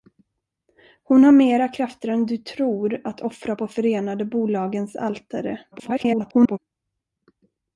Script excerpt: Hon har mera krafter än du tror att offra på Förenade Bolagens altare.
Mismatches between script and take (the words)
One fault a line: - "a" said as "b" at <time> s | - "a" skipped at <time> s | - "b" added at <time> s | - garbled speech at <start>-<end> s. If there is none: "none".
- garbled speech at 5.7-6.6 s